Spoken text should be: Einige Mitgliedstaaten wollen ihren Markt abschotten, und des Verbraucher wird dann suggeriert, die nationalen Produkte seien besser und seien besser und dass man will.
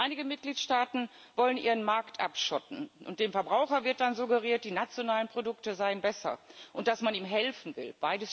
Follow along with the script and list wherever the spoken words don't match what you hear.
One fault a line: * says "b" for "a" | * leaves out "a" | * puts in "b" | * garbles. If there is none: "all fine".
* says "dem" for "des"
* says "dass man ihm helfen" for "seien besser und dass man"